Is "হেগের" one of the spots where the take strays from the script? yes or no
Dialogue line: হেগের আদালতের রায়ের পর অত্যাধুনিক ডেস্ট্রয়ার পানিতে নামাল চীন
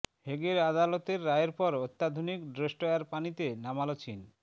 no